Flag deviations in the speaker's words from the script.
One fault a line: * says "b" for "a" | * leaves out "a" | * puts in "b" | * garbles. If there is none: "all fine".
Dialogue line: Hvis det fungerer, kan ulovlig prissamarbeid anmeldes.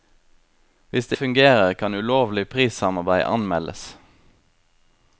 all fine